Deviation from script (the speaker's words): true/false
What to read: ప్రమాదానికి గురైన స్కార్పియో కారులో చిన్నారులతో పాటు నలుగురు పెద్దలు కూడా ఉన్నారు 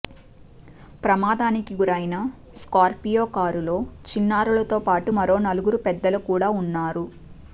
true